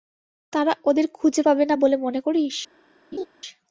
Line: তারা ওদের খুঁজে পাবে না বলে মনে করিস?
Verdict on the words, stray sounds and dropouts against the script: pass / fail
fail